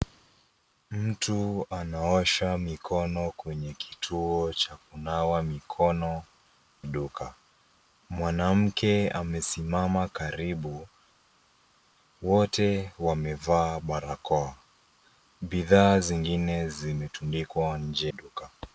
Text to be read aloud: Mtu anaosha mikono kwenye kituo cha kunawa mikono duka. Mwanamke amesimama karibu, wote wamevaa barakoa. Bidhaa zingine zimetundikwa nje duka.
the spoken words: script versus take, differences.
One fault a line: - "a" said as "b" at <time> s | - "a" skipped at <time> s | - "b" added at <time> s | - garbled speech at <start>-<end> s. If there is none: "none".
none